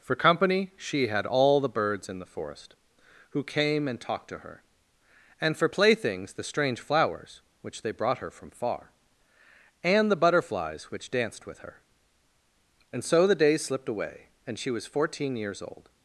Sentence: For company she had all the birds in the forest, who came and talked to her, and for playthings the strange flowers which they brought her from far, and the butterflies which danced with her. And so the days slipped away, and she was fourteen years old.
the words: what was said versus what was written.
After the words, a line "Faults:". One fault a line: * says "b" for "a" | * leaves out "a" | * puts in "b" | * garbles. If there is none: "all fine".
For company she had all the birds in the forest, who came and talked to her, and for playthings the strange flowers which they brought her from far, and the butterflies which danced with her. And so the days slipped away, and she was fourteen years old.
Faults:
all fine